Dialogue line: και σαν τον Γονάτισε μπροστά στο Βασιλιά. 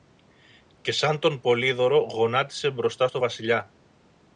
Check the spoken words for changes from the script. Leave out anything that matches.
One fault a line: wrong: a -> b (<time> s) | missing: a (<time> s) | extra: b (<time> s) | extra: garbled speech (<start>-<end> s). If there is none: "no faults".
extra: Πολύδωρο (1.4 s)